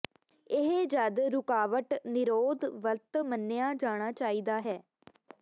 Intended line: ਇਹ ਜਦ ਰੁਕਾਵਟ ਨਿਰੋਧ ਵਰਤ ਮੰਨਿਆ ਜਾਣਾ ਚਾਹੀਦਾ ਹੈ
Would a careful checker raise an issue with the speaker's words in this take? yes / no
no